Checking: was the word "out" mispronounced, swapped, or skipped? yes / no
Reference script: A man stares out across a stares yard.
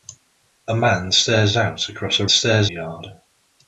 no